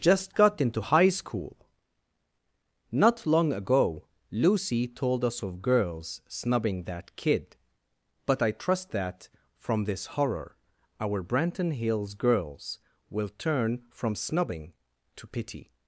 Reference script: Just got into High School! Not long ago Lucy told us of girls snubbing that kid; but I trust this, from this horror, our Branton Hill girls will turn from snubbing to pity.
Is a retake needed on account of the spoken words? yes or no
yes